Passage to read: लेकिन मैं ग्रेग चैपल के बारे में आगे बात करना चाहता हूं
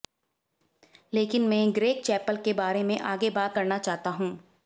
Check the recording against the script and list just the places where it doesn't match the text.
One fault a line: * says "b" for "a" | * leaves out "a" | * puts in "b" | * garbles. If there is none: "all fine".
all fine